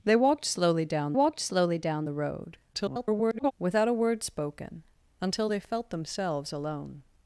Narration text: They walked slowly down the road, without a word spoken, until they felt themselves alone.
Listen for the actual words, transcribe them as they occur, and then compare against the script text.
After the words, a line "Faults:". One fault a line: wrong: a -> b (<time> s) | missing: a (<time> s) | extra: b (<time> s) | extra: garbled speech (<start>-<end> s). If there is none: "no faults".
They walked slowly down walked slowly down the road, [garbled] without a word spoken, until they felt themselves alone.
Faults:
extra: walked slowly down (1.1 s)
extra: garbled speech (2.7-3.5 s)